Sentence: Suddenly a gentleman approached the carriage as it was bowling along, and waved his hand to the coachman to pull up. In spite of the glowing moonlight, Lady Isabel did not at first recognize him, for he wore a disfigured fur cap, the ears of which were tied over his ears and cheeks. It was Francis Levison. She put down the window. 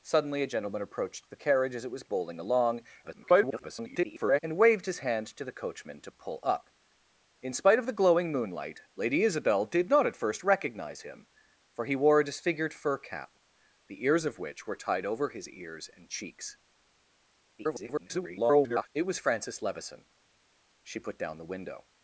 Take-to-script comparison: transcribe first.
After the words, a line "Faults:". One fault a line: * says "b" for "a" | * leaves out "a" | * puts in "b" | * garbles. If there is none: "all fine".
Suddenly a gentleman approached the carriage as it was bowling along, [garbled] and waved his hand to the coachman to pull up. In spite of the glowing moonlight, Lady Isabel did not at first recognize him, for he wore a disfigured fur cap, the ears of which were tied over his ears and cheeks. [garbled] It was Francis Levison. She put down the window.
Faults:
* garbles
* garbles